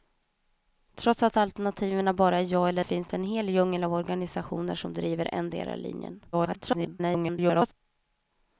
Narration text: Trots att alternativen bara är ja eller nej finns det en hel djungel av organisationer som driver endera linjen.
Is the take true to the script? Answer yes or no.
no